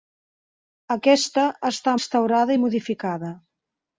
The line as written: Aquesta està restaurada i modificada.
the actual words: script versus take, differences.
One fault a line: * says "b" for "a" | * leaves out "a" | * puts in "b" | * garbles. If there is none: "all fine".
all fine